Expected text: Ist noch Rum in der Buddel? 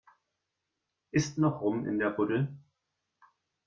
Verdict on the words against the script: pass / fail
pass